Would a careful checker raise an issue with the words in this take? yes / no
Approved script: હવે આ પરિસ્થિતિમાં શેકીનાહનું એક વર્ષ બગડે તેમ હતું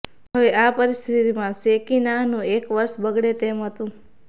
no